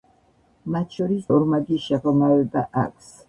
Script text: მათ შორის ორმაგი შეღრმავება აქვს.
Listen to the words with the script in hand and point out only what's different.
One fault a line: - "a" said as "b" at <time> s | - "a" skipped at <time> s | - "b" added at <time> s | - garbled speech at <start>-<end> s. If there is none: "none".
none